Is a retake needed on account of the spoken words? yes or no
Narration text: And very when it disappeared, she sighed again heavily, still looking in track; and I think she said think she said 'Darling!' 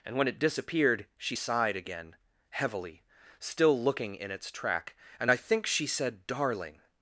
yes